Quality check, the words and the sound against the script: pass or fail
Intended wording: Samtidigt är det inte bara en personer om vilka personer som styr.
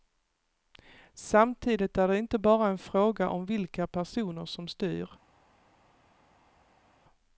fail